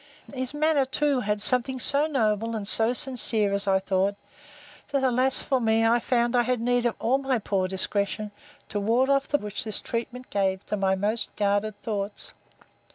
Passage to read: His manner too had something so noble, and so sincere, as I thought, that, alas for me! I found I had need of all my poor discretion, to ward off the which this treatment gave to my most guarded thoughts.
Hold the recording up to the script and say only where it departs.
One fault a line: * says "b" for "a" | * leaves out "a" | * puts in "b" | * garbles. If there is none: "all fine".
all fine